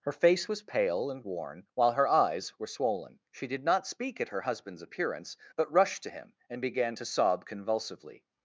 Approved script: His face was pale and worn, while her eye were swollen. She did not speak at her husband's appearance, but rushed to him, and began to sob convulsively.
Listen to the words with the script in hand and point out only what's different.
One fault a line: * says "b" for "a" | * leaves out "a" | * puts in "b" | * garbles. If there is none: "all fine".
* says "Her" for "His"
* says "eyes" for "eye"